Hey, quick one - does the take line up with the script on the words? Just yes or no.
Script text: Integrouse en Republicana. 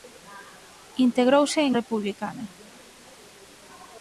yes